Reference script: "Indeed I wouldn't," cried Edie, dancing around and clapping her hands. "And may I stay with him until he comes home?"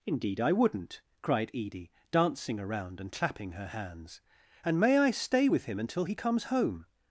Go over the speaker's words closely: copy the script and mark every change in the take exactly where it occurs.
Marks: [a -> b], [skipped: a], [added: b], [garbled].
"Indeed I wouldn't," cried Edie, dancing around and clapping her hands. "And may I stay with him until he comes home?"